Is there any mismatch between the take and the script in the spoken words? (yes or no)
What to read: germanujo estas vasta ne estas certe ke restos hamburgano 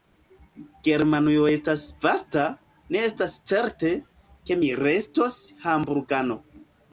yes